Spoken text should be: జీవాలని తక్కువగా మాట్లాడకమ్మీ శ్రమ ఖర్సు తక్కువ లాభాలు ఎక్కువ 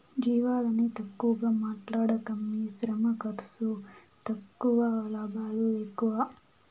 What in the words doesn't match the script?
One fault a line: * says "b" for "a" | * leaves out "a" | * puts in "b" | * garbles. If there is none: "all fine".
all fine